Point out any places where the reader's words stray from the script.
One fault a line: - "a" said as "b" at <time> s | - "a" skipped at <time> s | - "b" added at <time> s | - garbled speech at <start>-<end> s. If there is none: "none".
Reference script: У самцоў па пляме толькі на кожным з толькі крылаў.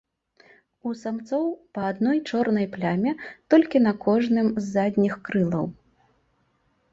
- "адной чорнай" added at 1.9 s
- "толькі" said as "задніх" at 4.8 s